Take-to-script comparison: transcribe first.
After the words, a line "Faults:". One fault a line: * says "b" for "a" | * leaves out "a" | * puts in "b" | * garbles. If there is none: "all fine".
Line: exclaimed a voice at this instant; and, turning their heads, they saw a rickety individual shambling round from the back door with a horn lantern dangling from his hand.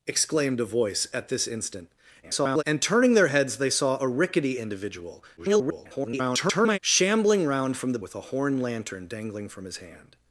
exclaimed a voice at this instant; [garbled] and, turning their heads, they saw a rickety individual [garbled] shambling round from the with a horn lantern dangling from his hand.
Faults:
* garbles
* garbles
* leaves out "back door"